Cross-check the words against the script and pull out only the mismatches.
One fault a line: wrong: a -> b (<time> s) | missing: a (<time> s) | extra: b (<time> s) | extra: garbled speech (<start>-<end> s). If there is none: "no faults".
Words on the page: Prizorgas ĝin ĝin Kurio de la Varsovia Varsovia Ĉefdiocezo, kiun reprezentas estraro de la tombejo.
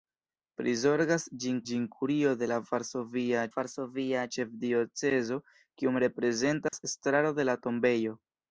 no faults